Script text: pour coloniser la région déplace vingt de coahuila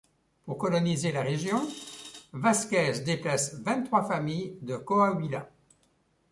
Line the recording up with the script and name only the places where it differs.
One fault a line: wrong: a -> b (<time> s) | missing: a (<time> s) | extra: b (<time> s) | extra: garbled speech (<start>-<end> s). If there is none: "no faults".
extra: vázquez (2.3 s)
extra: trois familles (3.8 s)